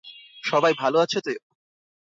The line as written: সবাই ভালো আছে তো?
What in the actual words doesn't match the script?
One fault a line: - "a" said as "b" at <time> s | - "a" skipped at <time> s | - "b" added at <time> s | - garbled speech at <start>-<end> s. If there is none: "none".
none